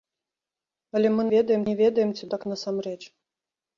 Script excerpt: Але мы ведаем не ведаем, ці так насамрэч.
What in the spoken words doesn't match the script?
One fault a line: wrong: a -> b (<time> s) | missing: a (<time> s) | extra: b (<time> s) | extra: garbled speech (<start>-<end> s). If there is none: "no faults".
no faults